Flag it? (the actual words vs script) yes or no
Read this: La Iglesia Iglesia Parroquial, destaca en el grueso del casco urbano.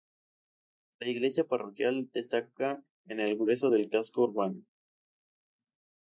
yes